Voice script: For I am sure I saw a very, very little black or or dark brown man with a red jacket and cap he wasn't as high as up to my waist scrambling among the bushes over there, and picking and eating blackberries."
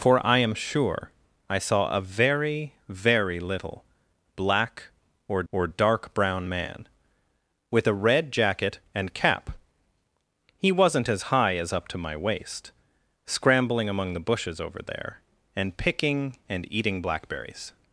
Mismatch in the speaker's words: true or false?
false